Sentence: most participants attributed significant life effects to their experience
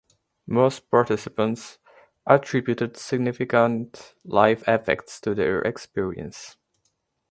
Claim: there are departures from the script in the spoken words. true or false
false